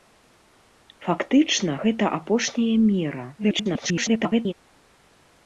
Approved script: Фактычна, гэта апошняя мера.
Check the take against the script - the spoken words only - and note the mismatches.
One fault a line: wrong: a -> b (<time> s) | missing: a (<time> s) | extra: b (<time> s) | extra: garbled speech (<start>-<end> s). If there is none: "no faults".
extra: garbled speech (3.4-4.5 s)